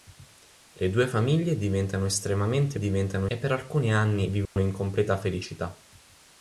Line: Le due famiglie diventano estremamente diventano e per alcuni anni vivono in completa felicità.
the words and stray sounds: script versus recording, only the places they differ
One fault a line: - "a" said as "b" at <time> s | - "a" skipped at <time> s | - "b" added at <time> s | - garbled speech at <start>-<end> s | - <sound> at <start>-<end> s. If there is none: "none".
- dropout at 4.5-4.6 s